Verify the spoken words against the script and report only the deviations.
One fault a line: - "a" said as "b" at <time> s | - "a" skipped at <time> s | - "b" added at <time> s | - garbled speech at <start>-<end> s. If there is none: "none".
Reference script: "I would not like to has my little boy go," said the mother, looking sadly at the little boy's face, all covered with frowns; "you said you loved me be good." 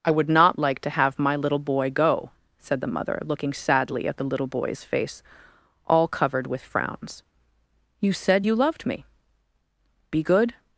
- "has" said as "have" at 0.9 s